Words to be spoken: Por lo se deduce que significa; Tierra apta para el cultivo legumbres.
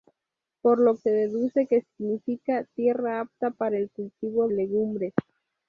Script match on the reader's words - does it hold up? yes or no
yes